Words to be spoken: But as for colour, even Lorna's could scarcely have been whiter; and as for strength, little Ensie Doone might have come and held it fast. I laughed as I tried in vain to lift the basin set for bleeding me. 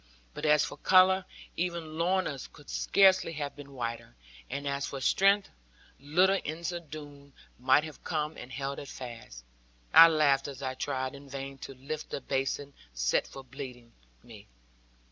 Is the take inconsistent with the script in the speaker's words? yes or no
no